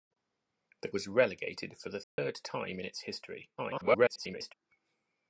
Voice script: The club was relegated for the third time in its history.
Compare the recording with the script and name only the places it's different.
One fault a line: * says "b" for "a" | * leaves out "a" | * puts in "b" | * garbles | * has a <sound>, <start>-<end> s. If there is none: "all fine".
* leaves out "club"
* has a dropout, 2.0-2.2 s
* garbles